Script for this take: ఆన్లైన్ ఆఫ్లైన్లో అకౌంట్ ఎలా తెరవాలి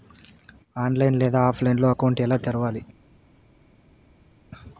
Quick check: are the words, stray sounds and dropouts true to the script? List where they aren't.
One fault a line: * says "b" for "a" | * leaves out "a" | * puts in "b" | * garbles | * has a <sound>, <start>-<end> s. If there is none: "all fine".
* puts in "లేదా"